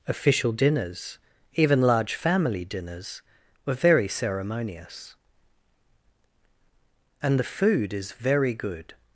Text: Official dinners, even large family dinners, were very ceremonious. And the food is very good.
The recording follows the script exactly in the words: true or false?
true